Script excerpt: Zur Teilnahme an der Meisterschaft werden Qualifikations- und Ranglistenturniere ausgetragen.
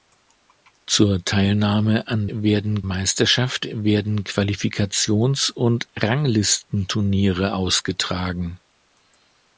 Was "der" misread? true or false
true